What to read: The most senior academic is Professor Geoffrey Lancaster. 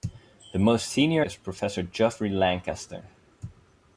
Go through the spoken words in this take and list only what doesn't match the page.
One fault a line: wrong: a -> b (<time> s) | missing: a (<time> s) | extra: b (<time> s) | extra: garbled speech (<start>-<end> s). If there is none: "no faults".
missing: academic (1.2 s)